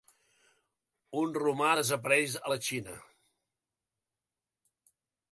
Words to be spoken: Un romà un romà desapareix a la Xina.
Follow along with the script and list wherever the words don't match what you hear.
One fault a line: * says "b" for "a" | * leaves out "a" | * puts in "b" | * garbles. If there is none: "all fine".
* leaves out "un romà"